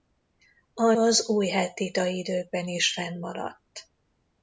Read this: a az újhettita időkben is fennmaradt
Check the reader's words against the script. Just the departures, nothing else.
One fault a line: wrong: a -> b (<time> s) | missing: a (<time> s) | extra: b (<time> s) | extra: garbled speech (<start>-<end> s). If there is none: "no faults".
no faults